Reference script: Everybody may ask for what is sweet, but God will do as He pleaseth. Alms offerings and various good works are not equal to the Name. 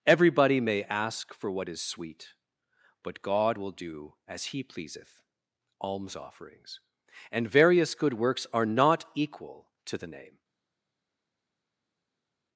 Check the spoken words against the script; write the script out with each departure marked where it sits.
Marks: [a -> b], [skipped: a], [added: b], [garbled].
Everybody may ask for what is sweet, but God will do as He pleaseth. Alms offerings and various good works are not equal to the Name.